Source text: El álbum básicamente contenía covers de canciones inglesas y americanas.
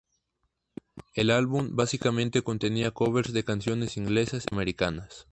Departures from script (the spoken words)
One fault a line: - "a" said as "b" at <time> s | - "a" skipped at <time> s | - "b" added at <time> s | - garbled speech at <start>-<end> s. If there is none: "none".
- "y" skipped at 4.5 s